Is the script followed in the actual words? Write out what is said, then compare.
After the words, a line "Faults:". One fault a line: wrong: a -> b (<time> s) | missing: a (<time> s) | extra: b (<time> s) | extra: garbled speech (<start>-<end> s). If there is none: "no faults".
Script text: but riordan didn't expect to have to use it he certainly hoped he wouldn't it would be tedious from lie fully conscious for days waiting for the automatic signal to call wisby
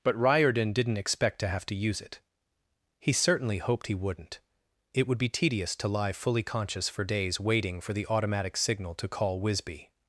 but riordan didn't expect to have to use it he certainly hoped he wouldn't it would be tedious to lie fully conscious for days waiting for the automatic signal to call wisby
Faults:
wrong: from -> to (5.8 s)